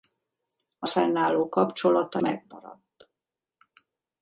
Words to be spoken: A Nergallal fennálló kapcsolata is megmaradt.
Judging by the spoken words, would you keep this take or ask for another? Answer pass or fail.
fail